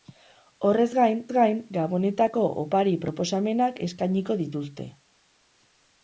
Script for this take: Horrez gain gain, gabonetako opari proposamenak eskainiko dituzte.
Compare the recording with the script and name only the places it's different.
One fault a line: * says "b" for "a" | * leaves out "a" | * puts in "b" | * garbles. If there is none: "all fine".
all fine